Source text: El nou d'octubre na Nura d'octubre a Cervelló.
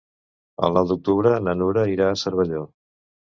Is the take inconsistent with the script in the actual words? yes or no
yes